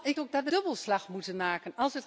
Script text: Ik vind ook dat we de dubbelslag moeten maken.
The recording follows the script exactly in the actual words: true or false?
false